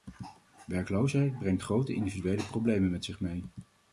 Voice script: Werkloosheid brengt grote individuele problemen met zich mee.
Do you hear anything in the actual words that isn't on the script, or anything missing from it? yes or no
no